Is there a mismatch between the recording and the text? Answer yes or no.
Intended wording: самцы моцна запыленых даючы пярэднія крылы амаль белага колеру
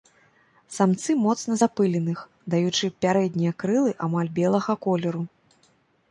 no